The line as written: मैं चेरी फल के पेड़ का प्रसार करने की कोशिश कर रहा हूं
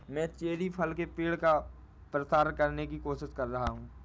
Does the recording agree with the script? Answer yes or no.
yes